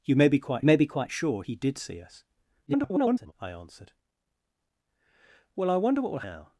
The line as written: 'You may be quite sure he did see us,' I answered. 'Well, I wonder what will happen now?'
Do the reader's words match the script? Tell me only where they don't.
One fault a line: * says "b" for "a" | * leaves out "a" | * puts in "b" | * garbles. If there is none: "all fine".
* puts in "may be quite"
* garbles
* leaves out "happen"